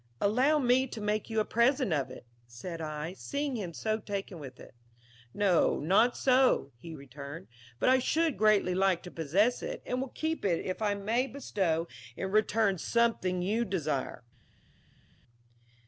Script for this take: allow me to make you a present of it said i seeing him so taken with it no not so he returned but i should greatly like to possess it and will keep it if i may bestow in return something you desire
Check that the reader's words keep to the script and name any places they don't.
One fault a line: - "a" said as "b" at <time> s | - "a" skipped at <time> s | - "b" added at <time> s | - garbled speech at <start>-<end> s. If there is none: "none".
none